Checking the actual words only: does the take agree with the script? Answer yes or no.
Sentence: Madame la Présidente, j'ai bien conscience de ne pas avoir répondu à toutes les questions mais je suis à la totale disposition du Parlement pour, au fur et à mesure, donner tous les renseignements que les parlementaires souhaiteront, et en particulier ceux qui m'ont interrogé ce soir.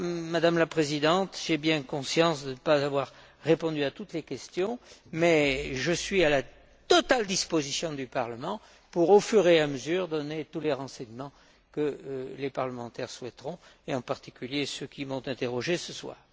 yes